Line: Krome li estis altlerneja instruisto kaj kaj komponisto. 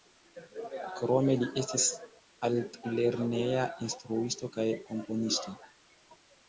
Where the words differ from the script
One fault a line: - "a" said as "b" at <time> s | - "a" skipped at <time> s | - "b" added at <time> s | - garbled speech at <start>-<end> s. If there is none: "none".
- "kaj" skipped at 4.7 s